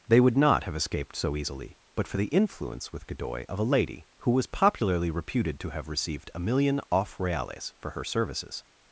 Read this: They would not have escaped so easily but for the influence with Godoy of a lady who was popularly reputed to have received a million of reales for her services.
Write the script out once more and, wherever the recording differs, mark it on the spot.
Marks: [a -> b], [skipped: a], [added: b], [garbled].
They would not have escaped so easily but for the influence with Godoy of a lady who was popularly reputed to have received a million [of -> off] reales for her services.